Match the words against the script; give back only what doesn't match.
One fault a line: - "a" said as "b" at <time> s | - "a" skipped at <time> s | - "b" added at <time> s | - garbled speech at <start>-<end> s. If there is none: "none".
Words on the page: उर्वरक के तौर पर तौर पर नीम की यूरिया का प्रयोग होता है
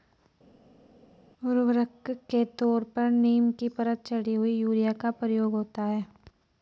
- "तौर पर नीम की" said as "नीम की परत चढ़ी हुई" at 3.1 s